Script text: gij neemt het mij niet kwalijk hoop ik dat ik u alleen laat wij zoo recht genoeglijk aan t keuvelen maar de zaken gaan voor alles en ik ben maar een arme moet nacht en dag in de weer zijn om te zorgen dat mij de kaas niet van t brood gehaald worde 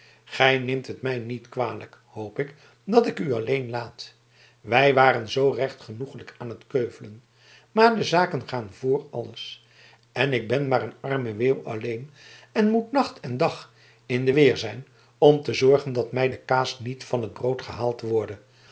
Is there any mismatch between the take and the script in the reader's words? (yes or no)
yes